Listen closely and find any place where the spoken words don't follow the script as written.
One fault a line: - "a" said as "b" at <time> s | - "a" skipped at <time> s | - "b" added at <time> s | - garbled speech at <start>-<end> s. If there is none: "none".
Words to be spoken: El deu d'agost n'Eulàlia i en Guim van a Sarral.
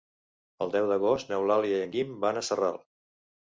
none